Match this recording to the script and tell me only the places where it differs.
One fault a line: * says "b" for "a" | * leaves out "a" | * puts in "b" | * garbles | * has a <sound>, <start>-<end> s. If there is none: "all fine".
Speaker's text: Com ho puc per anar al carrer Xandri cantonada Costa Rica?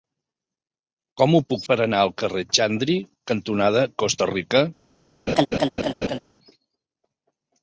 * has a laugh, 5.3-6.2 s